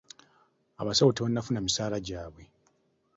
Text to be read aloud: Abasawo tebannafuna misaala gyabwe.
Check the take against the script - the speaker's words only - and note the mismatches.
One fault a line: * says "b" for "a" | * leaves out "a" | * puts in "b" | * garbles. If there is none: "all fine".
all fine